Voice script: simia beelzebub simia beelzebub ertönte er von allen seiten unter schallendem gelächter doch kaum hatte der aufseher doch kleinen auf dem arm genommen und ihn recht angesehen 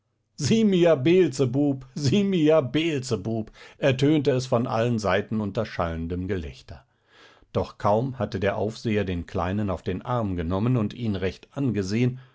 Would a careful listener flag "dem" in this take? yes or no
yes